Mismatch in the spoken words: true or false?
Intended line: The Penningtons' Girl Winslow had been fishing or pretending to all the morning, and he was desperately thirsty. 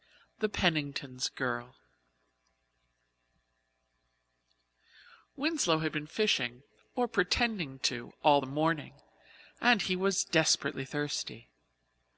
false